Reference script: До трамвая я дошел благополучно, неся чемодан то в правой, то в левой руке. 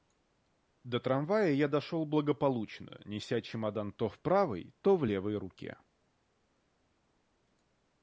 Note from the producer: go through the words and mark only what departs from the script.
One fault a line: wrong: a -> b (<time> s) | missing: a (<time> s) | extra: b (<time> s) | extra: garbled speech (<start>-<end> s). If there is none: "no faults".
no faults